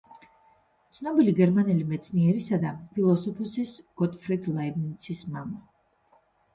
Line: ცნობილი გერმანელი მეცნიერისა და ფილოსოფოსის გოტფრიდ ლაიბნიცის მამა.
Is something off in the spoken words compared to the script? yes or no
no